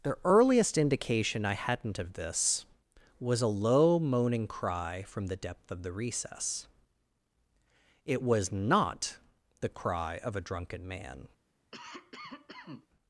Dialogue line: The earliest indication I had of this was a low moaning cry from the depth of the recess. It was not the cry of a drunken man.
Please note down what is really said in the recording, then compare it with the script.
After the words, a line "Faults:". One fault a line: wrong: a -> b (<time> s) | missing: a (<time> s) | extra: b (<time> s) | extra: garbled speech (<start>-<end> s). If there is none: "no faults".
The earliest indication I hadn't of this was a low moaning cry from the depth of the recess. It was not the cry of a drunken man.
Faults:
wrong: had -> hadn't (1.5 s)